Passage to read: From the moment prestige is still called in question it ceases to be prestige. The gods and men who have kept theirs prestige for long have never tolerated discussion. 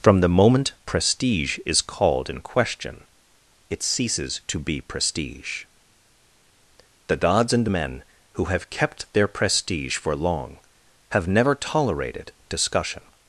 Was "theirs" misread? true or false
true